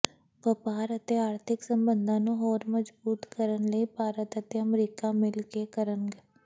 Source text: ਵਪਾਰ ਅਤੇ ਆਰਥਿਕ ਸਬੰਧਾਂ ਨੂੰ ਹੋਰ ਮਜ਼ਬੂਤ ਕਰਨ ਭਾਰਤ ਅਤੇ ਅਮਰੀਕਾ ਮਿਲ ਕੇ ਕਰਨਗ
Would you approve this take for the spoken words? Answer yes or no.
no